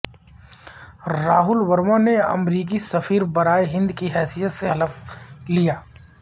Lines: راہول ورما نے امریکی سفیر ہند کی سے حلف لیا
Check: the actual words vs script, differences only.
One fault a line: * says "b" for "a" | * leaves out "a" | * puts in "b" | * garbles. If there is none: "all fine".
* puts in "برائے"
* puts in "حیثیت"